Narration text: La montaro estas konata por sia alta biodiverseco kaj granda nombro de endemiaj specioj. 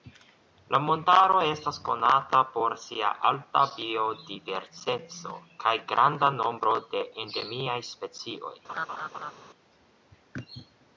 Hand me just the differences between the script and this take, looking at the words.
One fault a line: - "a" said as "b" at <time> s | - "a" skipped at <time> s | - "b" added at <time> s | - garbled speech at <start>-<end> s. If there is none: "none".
none